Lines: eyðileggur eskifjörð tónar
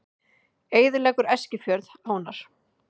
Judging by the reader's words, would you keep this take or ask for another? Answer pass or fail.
pass